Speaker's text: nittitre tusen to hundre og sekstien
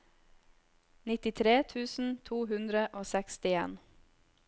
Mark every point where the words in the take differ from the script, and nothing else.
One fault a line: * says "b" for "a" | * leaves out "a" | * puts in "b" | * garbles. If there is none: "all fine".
all fine